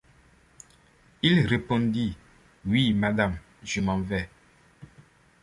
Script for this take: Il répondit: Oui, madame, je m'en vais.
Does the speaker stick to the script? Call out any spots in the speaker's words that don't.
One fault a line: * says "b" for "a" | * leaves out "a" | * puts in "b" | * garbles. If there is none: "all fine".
all fine